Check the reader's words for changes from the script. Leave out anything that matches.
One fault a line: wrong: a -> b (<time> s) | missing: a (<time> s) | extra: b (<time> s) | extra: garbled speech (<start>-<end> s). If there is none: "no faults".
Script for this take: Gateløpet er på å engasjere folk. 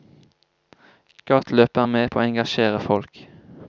extra: med (1.9 s)